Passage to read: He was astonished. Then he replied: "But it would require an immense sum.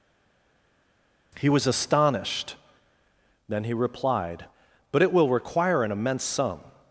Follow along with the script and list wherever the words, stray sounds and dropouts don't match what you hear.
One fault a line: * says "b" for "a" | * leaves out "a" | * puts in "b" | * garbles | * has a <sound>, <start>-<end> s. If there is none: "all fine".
* says "will" for "would"